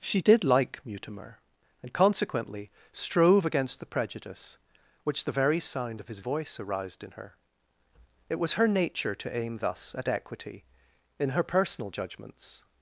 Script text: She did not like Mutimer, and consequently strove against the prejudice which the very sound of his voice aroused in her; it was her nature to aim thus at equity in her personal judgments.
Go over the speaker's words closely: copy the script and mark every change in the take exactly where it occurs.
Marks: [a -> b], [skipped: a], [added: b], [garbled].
She did [skipped: not] like Mutimer, and consequently strove against the prejudice which the very sound of his voice aroused in her; it was her nature to aim thus at equity in her personal judgments.